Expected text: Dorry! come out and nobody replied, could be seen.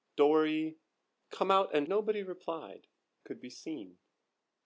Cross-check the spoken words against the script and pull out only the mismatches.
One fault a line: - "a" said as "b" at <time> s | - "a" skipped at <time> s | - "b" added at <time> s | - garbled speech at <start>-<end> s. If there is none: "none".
none